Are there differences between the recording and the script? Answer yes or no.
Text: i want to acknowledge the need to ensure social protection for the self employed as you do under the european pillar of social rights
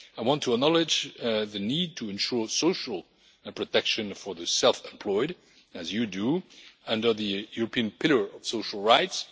no